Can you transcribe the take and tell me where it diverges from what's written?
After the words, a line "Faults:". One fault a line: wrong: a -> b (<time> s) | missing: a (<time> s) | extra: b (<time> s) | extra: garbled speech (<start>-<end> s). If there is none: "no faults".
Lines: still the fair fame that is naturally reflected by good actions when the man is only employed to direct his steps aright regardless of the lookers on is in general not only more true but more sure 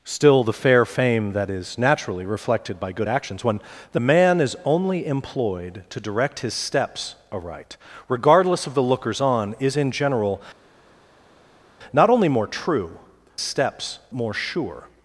still the fair fame that is naturally reflected by good actions when the man is only employed to direct his steps aright regardless of the lookers on is in general not only more true steps more sure
Faults:
wrong: but -> steps (13.4 s)